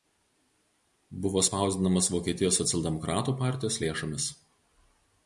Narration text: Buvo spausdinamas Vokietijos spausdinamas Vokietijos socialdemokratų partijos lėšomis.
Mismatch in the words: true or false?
true